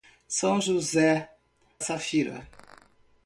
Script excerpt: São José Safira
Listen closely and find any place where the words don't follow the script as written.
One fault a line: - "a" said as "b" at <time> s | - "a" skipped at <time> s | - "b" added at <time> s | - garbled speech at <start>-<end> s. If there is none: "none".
none